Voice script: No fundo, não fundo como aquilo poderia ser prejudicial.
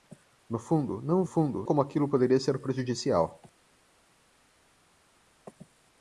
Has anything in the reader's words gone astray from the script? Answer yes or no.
no